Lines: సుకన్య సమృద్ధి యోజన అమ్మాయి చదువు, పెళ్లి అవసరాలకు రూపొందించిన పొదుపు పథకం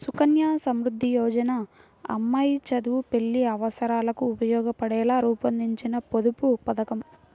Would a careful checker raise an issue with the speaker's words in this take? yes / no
yes